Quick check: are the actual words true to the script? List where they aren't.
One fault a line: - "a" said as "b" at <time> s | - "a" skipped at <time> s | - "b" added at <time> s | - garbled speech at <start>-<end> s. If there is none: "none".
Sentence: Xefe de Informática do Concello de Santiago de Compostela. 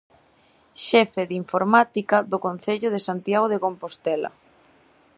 none